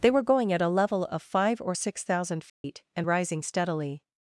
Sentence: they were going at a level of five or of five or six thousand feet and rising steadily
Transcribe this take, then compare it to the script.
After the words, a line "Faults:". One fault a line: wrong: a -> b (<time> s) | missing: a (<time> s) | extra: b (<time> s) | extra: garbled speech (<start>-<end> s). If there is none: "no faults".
they were going at a level of five or six thousand feet and rising steadily
Faults:
missing: of five or (1.8 s)